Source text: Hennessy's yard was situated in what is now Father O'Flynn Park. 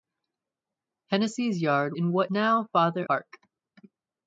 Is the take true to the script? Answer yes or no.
no